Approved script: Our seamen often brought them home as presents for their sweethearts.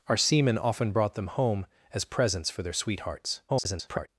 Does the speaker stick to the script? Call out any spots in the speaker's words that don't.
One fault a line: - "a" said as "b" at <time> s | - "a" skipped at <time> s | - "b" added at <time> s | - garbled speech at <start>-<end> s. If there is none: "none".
- garbled speech at 3.5-4.1 s